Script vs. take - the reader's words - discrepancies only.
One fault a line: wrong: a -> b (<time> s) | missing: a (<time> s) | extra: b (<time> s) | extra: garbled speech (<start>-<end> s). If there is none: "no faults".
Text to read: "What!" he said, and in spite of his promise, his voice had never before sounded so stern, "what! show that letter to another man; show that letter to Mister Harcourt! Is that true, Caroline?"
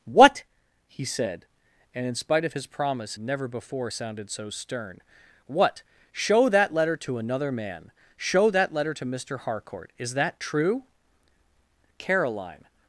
missing: his voice had (3.1 s)